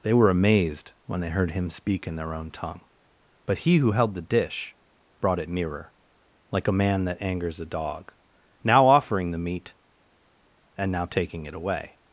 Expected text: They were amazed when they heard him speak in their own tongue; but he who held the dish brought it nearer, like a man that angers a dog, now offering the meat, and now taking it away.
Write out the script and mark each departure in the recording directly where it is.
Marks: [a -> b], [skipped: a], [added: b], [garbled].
They were amazed when they heard him speak in their own tongue; but he who held the dish brought it nearer, like a man that angers a dog, now offering the meat, and now taking it away.